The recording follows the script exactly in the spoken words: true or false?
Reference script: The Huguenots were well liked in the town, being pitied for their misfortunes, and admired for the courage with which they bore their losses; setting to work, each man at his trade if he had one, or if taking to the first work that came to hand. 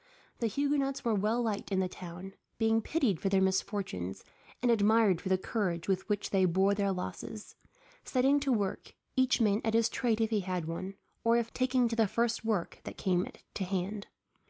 true